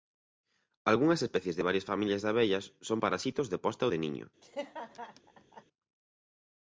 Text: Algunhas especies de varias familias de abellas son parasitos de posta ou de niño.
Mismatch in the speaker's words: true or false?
false